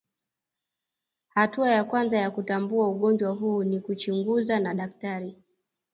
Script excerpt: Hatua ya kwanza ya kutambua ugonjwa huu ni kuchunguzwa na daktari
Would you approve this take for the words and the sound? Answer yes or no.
yes